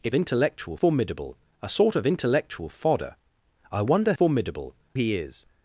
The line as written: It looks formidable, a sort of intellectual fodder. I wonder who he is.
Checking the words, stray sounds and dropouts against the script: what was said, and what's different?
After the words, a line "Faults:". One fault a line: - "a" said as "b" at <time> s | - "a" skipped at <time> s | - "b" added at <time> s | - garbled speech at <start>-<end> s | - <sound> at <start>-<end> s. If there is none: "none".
It intellectual formidable, a sort of intellectual fodder. I wonder formidable he is.
Faults:
- "looks" said as "intellectual" at 0.1 s
- "who" said as "formidable" at 4.1 s